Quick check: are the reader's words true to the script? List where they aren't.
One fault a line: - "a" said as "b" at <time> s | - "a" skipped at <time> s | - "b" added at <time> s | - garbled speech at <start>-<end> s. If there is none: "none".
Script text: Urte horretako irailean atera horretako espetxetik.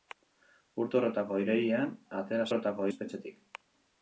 none